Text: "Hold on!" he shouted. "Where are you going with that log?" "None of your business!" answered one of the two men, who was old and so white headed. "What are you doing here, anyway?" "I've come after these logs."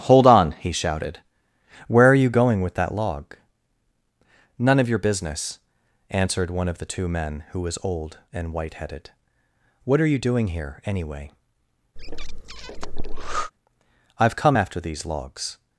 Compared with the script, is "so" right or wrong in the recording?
wrong